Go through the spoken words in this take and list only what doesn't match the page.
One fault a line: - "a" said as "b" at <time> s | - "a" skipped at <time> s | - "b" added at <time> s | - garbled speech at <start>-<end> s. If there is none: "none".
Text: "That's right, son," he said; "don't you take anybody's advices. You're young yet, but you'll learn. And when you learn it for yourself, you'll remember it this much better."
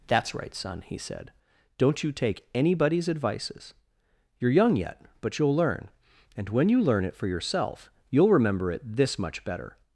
none